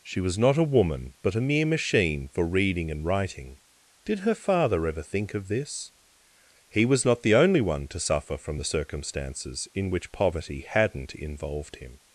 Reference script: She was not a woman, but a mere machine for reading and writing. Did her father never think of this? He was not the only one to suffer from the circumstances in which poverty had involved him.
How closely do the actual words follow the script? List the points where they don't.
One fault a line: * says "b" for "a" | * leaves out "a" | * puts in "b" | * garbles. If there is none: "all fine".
* says "ever" for "never"
* says "hadn't" for "had"